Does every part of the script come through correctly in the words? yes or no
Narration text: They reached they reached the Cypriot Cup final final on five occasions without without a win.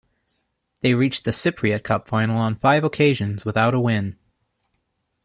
no